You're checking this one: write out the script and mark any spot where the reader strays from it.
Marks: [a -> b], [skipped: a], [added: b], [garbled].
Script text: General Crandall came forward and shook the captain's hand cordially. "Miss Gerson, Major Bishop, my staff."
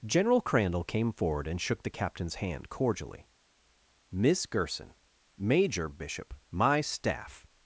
General Crandall came forward and shook the captain's hand cordially. "Miss Gerson, Major Bishop, my staff."